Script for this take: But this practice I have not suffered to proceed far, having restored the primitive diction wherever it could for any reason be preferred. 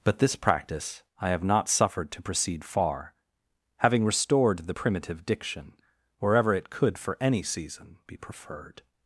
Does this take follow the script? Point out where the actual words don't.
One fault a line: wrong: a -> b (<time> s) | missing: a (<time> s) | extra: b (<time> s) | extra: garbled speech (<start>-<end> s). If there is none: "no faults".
wrong: reason -> season (7.4 s)